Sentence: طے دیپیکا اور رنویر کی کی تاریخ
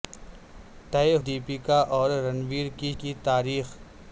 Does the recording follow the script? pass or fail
pass